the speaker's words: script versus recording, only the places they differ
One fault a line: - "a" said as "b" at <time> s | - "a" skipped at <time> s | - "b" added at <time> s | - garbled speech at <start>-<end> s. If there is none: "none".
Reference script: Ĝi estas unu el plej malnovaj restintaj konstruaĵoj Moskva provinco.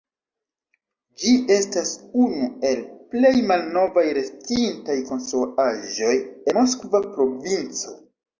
none